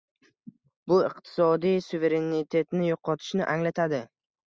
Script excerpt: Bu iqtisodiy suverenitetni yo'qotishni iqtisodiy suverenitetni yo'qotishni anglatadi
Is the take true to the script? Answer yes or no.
no